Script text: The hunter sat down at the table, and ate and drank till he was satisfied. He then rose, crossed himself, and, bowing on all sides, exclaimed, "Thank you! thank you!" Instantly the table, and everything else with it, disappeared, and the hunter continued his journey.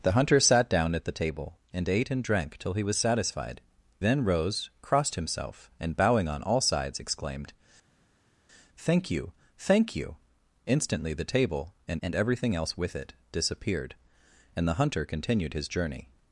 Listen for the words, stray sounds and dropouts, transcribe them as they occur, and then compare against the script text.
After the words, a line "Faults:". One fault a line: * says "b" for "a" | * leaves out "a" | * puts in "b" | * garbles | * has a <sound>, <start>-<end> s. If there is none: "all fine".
The hunter sat down at the table, and ate and drank till he was satisfied. Then rose, crossed himself, and, bowing on all sides, exclaimed, "Thank you! thank you!" Instantly the table, and and everything else with it, disappeared, and the hunter continued his journey.
Faults:
* leaves out "He"
* puts in "and"